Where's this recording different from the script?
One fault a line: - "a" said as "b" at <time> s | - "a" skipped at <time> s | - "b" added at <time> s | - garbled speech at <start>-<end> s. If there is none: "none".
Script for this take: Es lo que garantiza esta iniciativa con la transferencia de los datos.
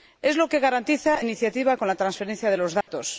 - "esta" skipped at 1.2 s